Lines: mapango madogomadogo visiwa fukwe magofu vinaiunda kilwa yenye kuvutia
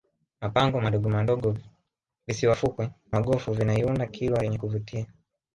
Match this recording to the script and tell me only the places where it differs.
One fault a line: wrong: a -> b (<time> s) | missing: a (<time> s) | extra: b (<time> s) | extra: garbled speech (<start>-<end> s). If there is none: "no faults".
no faults